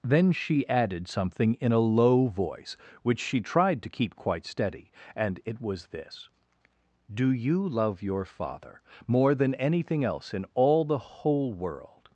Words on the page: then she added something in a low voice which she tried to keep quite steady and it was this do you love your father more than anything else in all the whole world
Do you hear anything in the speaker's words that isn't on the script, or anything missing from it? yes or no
no